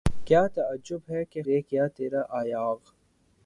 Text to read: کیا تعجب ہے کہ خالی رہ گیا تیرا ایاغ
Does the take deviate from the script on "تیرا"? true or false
false